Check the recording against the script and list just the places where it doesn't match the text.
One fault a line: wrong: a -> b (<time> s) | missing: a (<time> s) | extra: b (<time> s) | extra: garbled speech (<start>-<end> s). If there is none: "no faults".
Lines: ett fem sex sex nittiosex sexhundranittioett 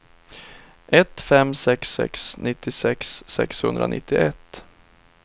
no faults